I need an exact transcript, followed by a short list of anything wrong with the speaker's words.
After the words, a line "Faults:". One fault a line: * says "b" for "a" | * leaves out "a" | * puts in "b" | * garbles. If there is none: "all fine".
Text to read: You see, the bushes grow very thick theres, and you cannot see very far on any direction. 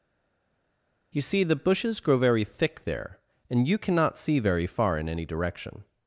You see, the bushes grow very thick there, and you cannot see very far in any direction.
Faults:
* says "there" for "theres"
* says "in" for "on"